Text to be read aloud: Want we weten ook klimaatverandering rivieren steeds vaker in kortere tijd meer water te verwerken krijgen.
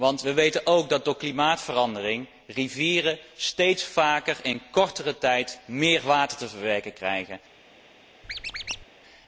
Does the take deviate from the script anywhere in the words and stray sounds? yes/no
yes